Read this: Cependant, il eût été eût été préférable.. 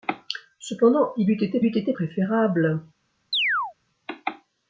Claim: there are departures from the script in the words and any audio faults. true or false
true